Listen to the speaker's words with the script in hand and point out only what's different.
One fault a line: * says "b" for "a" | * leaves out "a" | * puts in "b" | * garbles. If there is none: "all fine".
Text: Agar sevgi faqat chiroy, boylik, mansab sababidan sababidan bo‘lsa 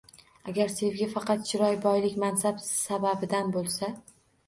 * leaves out "sababidan"